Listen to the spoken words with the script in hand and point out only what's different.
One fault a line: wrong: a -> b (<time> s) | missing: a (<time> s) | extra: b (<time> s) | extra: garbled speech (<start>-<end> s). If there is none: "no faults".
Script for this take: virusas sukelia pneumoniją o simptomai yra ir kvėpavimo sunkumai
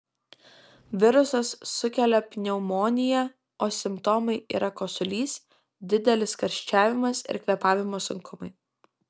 extra: kosulys didelis karščiavimas (4.8 s)